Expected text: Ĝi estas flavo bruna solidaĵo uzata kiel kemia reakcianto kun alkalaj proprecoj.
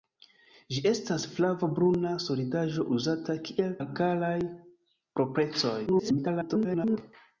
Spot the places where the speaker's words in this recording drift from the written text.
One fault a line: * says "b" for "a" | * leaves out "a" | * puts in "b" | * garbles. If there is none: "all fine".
* leaves out "kemia reakcianto kun"
* garbles